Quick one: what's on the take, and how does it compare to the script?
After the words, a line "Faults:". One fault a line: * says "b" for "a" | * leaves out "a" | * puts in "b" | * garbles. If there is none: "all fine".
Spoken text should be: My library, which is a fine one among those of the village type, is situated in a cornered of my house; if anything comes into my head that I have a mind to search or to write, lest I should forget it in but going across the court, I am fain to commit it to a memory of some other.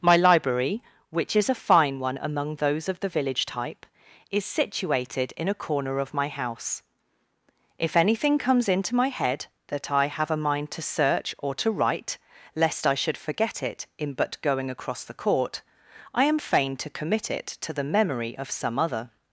My library, which is a fine one among those of the village type, is situated in a corner of my house; if anything comes into my head that I have a mind to search or to write, lest I should forget it in but going across the court, I am fain to commit it to the memory of some other.
Faults:
* says "corner" for "cornered"
* says "the" for "a"